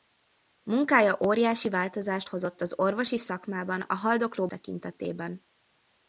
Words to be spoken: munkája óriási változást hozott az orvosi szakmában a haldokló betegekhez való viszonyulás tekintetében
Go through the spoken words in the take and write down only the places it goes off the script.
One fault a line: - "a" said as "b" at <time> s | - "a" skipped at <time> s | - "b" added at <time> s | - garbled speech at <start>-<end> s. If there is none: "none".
- "betegekhez való viszonyulás" skipped at 4.5 s